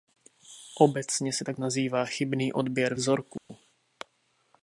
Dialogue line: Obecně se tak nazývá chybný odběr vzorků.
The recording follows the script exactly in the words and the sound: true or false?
false